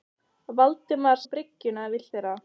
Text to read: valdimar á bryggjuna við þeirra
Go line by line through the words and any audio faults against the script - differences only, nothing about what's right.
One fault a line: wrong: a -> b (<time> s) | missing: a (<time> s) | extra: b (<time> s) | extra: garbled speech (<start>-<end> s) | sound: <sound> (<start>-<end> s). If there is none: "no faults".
no faults